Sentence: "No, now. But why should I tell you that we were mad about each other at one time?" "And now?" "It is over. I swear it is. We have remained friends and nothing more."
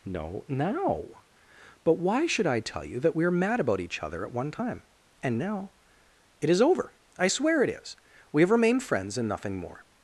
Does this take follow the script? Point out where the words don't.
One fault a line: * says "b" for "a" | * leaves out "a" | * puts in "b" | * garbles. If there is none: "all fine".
all fine